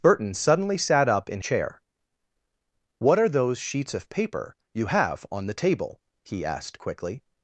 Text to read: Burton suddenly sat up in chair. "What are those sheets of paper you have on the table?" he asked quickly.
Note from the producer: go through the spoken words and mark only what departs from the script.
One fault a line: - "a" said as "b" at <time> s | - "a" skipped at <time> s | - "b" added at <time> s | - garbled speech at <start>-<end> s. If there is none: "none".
none